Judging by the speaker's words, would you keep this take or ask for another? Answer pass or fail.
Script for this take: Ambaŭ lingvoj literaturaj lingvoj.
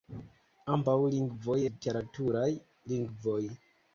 pass